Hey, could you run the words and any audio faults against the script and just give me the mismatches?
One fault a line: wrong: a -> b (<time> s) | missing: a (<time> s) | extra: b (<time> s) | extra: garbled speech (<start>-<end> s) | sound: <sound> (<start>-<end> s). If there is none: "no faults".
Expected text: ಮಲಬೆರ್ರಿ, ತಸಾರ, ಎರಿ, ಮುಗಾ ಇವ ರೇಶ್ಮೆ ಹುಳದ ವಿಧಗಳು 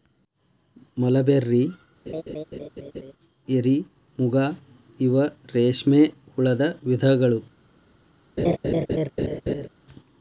missing: ತಸಾರ (1.6 s)
sound: laugh (2.1-3.1 s)
sound: laugh (8.4-9.7 s)